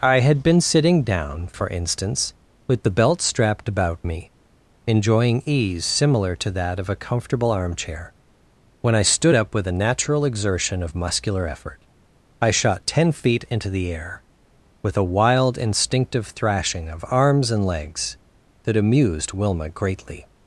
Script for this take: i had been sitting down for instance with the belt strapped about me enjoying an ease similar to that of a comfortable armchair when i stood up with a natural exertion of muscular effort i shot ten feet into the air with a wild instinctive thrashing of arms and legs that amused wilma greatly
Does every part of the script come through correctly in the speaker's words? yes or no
no